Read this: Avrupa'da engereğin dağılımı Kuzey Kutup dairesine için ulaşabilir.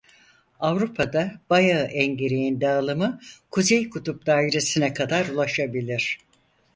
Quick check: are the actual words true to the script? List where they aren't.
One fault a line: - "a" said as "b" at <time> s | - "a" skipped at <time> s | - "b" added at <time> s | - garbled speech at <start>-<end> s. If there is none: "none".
- "bayağı" added at 1.5 s
- "için" said as "kadar" at 4.9 s